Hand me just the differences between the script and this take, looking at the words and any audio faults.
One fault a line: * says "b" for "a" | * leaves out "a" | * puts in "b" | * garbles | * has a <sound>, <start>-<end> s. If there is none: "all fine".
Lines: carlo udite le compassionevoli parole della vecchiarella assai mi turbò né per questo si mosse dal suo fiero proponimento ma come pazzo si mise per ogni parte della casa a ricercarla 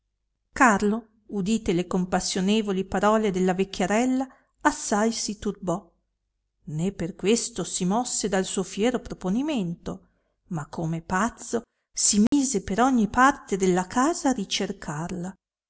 * says "si" for "mi"
* has a dropout, 12.3-12.3 s